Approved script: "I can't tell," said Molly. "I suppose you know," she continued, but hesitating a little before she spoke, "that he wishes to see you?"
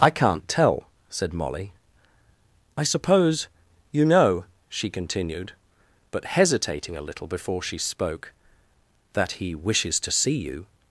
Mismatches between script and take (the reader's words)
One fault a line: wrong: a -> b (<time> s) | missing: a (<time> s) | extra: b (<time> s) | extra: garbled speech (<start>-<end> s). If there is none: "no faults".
no faults